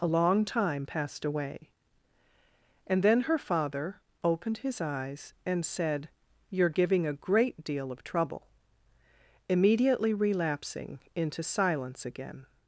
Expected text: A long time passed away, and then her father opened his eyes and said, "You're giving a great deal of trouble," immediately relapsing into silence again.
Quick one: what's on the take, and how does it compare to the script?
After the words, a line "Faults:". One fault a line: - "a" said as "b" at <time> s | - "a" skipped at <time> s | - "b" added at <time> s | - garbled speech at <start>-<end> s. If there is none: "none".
A long time passed away, and then her father opened his eyes and said, "You're giving a great deal of trouble," immediately relapsing into silence again.
Faults:
none